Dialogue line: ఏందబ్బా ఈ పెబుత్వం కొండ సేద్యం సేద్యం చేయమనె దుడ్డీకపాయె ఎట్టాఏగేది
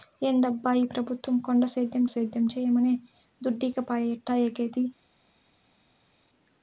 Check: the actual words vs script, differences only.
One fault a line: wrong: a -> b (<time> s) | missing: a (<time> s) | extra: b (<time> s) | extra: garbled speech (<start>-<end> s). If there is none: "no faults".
no faults